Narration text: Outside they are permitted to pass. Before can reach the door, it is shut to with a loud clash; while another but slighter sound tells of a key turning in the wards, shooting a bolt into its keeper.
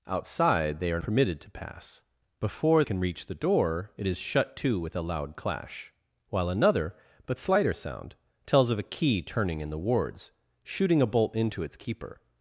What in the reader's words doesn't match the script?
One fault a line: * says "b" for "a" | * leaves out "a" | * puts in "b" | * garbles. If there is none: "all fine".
all fine